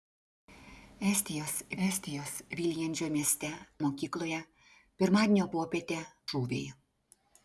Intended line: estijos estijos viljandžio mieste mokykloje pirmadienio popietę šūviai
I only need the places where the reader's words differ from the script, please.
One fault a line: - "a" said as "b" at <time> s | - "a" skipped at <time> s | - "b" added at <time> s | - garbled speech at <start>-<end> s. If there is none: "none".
none